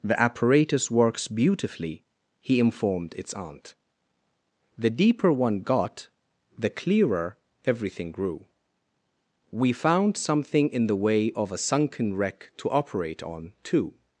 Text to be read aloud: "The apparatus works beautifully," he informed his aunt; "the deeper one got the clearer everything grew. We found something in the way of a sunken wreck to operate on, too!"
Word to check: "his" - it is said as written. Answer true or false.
false